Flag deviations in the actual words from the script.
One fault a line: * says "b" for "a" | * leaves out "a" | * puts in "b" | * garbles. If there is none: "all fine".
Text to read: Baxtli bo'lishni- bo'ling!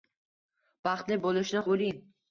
all fine